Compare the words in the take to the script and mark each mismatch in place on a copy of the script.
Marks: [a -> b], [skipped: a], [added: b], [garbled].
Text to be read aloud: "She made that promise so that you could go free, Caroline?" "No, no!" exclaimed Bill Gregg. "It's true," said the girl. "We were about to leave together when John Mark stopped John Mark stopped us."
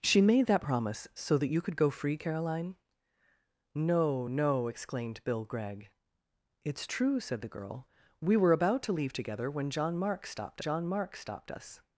"She made that promise so that you could go free, Caroline?" "No, no!" exclaimed Bill Gregg. "It's true," said the girl. "We were about to leave together when John Mark stopped John Mark stopped us."